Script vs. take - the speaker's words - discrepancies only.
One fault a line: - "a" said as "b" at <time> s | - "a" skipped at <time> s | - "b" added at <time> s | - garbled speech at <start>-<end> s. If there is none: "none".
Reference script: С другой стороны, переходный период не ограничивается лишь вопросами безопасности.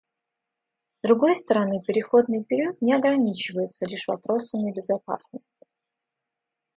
none